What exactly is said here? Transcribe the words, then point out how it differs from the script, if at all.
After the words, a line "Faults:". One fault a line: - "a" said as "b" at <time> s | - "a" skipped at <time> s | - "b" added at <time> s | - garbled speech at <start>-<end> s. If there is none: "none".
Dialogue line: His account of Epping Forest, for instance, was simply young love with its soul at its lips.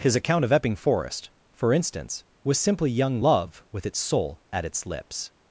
His account of Epping Forest, for instance, was simply young love with its soul at its lips.
Faults:
none